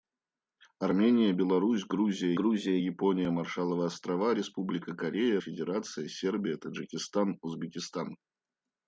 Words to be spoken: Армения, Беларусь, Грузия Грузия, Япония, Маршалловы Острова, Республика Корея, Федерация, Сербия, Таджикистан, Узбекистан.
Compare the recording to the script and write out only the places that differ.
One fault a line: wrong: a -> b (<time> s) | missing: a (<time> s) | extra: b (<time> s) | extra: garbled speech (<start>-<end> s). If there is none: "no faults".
no faults